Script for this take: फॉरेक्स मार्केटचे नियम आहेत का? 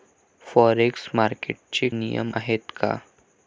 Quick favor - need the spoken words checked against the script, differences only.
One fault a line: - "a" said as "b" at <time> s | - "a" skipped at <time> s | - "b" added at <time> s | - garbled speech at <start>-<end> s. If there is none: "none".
none